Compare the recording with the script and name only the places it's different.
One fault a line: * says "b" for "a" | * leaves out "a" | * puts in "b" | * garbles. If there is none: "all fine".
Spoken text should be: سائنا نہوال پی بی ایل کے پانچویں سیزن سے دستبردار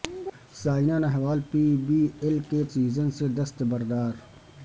* leaves out "پانچویں"